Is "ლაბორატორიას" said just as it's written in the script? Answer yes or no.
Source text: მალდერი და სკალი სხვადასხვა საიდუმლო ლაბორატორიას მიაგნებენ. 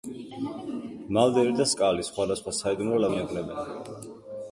no